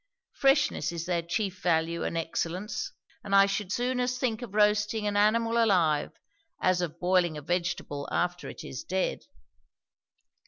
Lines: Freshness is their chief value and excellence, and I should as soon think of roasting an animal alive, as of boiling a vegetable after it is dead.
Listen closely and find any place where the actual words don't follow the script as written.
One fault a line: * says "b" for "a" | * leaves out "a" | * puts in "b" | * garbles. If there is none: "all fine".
* leaves out "as"